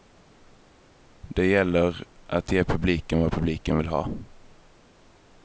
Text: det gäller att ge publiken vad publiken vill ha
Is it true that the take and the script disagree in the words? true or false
false